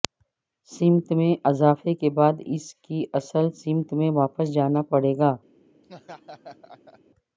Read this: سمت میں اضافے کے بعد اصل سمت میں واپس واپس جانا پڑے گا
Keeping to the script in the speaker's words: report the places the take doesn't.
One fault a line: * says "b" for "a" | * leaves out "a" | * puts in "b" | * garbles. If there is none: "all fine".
* puts in "اس کی"
* leaves out "واپس"